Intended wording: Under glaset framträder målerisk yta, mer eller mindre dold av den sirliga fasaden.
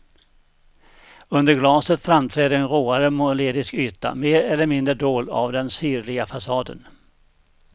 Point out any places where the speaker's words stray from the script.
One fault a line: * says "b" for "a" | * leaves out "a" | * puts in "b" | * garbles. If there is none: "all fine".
* puts in "en råare"